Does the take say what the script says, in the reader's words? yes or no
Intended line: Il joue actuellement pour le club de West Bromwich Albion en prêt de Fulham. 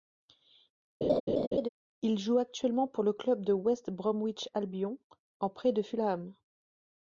yes